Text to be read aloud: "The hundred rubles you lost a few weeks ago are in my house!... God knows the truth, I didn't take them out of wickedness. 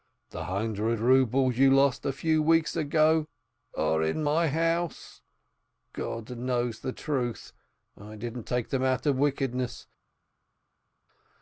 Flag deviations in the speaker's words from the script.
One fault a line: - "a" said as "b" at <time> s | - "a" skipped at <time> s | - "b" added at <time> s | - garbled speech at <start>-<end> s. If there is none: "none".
none